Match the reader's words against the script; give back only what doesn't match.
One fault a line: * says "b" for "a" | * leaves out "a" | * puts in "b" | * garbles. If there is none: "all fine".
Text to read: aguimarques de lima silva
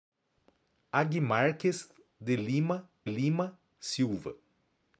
* puts in "lima"